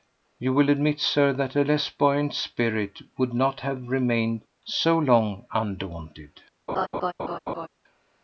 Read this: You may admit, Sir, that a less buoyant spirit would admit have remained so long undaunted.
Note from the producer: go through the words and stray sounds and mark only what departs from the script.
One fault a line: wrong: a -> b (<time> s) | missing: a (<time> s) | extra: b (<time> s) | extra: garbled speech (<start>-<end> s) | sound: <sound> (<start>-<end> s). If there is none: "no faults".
wrong: may -> will (0.5 s)
wrong: admit -> not (3.4 s)
sound: laugh (6.7-7.7 s)